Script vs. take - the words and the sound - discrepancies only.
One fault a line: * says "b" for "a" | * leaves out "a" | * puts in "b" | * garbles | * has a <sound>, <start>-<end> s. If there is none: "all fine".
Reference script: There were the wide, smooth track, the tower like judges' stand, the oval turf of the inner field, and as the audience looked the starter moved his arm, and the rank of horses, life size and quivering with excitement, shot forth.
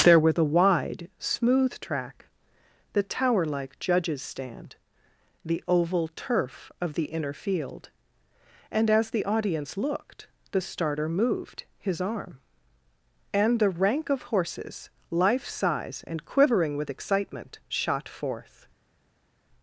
all fine